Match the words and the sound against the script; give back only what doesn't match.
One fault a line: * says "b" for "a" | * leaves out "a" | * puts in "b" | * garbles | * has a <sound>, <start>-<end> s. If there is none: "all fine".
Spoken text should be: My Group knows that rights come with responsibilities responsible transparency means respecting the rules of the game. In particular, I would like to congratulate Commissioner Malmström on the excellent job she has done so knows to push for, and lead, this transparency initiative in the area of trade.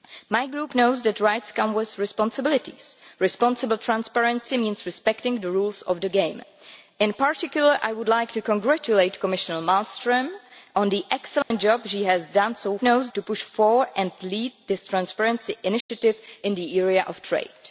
* has a dropout, 11.4-11.5 s
* has a dropout, 15.8-15.9 s